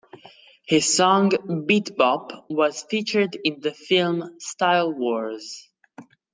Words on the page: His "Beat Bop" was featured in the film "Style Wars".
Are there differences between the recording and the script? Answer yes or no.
yes